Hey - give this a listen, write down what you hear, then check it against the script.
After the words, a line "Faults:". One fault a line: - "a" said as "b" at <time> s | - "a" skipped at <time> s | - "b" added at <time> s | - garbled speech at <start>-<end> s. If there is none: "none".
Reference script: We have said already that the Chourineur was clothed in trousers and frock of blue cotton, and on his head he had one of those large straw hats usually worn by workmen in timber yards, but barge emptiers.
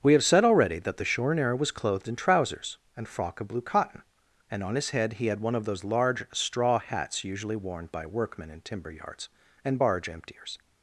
We have said already that the Chourineur was clothed in trousers and frock of blue cotton, and on his head he had one of those large straw hats usually worn by workmen in timber yards, and barge emptiers.
Faults:
- "but" said as "and" at 9.6 s